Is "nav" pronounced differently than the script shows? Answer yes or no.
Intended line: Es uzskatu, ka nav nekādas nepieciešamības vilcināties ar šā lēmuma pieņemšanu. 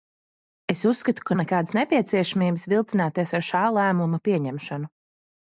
yes